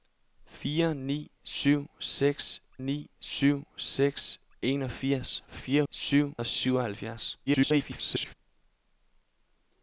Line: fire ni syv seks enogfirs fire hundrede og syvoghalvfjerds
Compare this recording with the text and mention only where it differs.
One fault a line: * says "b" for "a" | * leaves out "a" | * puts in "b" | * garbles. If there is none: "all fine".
* puts in "ni syv seks"
* says "syv" for "hundrede"
* garbles